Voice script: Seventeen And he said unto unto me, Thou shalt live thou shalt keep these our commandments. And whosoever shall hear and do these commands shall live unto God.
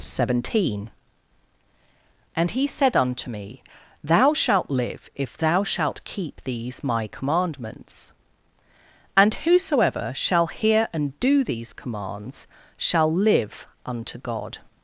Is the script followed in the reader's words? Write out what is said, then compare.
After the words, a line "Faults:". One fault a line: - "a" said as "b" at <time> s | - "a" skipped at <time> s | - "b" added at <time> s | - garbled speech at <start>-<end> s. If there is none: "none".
Seventeen And he said unto me, Thou shalt live if thou shalt keep these my commandments. And whosoever shall hear and do these commands shall live unto God.
Faults:
- "unto" skipped at 3.3 s
- "if" added at 5.1 s
- "our" said as "my" at 6.8 s